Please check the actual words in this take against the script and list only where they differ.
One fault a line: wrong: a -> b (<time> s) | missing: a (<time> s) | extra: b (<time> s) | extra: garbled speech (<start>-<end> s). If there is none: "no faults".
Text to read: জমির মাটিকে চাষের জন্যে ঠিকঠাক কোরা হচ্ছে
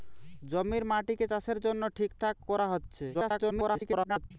extra: garbled speech (3.1-4.3 s)